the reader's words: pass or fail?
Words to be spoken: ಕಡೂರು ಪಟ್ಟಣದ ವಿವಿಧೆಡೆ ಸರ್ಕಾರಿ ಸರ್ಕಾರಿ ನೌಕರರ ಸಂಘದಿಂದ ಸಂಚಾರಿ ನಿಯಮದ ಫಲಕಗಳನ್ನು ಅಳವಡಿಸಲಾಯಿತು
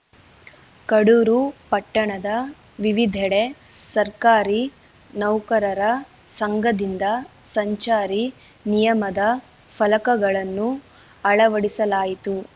fail